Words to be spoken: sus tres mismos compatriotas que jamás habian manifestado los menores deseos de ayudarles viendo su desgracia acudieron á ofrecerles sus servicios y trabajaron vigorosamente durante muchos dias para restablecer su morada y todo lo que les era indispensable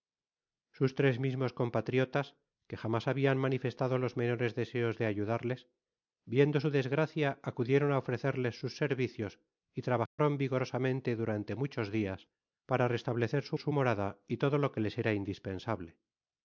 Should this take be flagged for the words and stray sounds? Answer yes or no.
yes